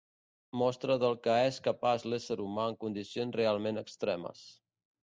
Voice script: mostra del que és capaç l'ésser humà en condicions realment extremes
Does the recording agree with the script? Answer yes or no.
yes